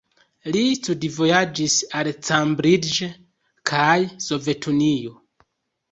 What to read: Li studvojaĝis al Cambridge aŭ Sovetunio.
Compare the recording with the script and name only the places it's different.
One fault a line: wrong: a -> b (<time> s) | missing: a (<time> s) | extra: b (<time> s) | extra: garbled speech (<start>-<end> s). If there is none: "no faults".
wrong: aŭ -> kaj (3.7 s)